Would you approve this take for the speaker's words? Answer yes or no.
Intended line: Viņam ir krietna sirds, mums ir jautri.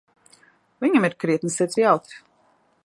no